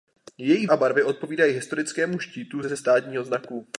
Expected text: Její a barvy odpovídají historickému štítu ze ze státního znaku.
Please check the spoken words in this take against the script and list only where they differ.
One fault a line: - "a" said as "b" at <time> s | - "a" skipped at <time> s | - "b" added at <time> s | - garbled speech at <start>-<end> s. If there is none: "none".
none